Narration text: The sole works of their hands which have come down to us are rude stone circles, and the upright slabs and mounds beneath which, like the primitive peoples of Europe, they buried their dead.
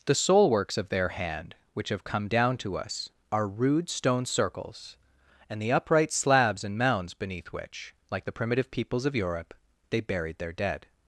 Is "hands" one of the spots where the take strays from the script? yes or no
yes